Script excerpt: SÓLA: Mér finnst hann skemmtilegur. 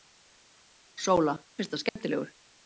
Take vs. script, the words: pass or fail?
fail